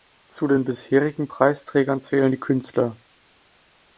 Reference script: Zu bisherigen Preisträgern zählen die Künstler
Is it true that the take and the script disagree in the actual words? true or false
true